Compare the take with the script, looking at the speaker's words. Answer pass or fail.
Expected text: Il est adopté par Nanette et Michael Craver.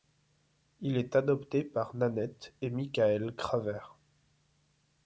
pass